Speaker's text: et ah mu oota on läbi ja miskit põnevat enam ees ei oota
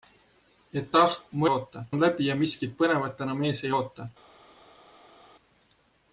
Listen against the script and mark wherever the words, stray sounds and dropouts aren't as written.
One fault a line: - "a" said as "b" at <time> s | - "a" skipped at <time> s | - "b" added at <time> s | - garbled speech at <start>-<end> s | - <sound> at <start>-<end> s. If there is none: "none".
none